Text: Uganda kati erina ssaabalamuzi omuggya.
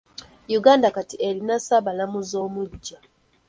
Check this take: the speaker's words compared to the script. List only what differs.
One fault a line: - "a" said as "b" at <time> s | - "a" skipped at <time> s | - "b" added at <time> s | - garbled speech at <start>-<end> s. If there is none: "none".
none